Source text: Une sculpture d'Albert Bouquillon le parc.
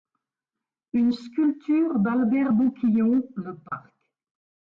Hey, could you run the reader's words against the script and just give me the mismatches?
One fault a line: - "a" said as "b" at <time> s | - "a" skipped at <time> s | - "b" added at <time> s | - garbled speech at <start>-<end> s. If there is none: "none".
none